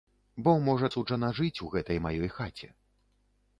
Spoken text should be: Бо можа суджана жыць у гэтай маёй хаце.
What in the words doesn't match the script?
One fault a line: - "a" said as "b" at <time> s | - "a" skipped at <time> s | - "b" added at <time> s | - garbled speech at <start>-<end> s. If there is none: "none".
none